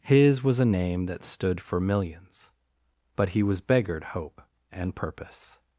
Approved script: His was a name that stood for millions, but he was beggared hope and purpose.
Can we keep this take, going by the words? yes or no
yes